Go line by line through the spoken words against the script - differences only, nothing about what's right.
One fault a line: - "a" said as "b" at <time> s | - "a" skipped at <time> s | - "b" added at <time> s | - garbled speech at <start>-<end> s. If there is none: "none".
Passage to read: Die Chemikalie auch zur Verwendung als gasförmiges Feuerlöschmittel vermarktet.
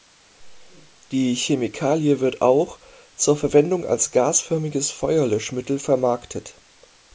- "wird" added at 2.2 s